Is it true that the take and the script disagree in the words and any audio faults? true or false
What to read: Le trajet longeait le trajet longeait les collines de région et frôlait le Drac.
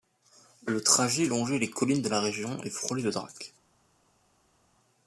true